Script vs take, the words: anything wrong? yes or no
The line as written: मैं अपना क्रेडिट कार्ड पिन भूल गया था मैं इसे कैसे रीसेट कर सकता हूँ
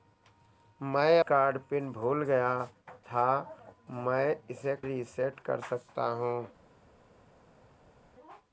yes